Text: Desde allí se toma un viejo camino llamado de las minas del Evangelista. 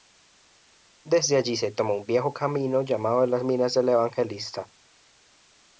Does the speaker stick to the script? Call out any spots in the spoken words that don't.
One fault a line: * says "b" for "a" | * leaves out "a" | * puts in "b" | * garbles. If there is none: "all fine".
all fine